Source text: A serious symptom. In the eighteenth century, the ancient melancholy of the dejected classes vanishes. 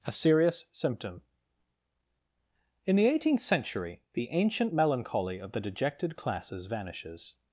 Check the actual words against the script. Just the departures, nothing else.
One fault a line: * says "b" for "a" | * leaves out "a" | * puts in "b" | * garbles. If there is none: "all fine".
all fine